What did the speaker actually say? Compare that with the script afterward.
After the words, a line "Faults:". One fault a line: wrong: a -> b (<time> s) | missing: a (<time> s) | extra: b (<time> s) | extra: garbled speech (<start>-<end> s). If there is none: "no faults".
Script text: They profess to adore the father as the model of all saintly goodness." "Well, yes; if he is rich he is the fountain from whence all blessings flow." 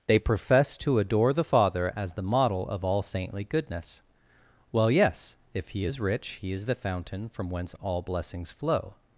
They profess to adore the father as the model of all saintly goodness." "Well, yes; if he is rich he is the fountain from whence all blessings flow."
Faults:
no faults